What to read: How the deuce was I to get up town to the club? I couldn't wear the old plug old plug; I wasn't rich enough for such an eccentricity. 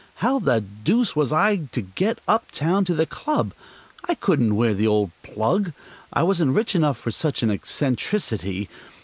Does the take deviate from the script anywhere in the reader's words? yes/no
yes